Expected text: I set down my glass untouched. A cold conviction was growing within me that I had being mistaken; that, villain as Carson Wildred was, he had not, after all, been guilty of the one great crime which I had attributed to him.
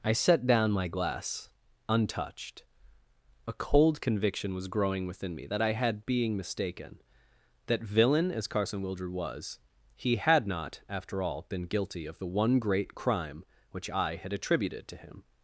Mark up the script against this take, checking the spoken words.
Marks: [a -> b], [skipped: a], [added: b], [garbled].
I set down my glass untouched. A cold conviction was growing within me that I had being mistaken; that, villain as Carson Wildred was, he had not, after all, been guilty of the one great crime which I had attributed to him.